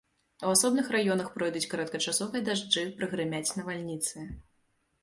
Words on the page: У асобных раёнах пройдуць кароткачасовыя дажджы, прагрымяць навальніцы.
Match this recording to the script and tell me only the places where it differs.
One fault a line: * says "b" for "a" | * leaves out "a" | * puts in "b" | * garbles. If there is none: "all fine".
all fine